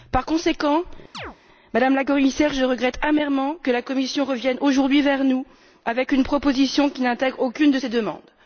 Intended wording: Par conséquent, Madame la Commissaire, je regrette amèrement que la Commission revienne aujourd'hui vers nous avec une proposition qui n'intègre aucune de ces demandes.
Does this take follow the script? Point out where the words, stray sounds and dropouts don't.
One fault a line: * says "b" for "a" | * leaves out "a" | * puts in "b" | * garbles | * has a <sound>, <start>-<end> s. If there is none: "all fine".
* has a chirp, 1.1-1.4 s